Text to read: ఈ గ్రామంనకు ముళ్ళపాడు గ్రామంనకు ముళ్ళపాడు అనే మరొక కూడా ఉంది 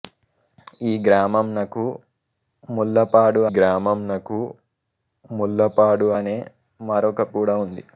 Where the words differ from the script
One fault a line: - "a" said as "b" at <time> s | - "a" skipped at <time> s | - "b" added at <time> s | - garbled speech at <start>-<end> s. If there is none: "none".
none